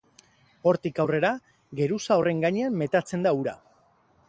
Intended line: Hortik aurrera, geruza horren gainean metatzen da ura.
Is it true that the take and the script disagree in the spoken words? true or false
false